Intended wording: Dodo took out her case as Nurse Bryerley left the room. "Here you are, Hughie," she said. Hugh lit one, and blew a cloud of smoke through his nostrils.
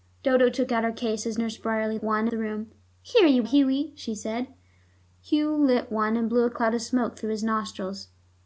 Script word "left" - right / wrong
wrong